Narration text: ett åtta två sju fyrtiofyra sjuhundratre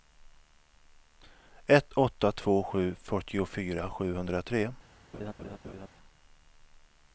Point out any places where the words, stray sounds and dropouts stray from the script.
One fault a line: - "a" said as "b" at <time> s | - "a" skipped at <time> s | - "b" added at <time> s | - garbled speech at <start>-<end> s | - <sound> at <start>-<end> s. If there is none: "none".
- laugh at 5.1-5.9 s